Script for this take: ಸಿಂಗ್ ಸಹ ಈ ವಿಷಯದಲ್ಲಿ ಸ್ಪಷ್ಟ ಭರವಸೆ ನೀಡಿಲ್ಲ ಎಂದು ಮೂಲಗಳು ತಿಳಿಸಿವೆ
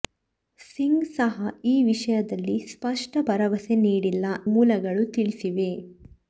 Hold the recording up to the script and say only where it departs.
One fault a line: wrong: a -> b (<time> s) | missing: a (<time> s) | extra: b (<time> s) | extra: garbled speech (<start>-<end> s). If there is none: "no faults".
missing: ಎಂದು (4.2 s)